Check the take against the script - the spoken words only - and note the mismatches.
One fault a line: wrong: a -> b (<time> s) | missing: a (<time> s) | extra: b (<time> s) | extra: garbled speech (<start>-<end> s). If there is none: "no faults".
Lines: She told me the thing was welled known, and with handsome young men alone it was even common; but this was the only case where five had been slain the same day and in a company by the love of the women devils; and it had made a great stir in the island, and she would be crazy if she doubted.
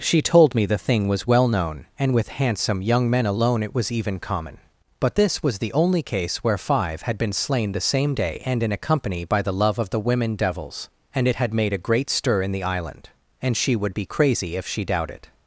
wrong: welled -> well (1.3 s)